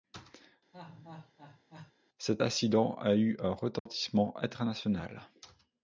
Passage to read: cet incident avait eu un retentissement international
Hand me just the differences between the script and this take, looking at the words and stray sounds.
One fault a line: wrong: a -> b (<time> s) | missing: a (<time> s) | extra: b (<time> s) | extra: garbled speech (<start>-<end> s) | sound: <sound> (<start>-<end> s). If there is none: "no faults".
sound: laugh (0.7-1.9 s)
wrong: avait -> a (2.9 s)
sound: dropout (3.8-3.9 s)